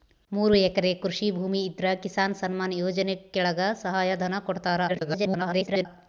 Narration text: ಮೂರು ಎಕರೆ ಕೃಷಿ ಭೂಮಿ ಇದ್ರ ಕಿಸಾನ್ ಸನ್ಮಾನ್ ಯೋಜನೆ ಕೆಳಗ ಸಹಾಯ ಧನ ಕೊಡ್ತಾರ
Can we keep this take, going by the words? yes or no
no